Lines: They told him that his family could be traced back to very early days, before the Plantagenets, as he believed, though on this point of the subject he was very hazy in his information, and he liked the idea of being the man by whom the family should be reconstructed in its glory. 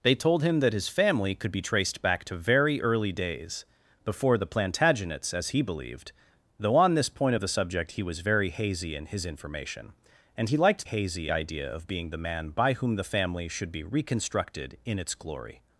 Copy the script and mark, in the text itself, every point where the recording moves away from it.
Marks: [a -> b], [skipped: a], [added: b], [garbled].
They told him that his family could be traced back to very early days, before the Plantagenets, as he believed, though on this point of the subject he was very hazy in his information, and he liked [the -> hazy] idea of being the man by whom the family should be reconstructed in its glory.